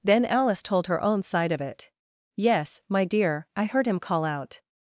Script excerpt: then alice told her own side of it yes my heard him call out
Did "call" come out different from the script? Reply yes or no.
no